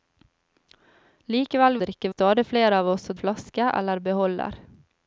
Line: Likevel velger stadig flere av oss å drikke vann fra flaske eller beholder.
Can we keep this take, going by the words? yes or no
no